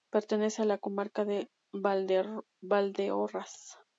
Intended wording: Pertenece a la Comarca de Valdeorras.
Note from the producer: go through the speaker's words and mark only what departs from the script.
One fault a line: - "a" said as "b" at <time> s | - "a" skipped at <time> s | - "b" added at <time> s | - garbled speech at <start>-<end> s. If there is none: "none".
none